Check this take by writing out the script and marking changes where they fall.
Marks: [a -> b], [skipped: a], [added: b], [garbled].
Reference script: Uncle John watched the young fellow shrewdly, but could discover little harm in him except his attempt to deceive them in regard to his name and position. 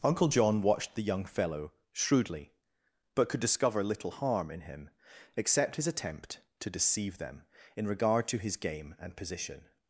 Uncle John watched the young fellow shrewdly, but could discover little harm in him except his attempt to deceive them in regard to his [name -> game] and position.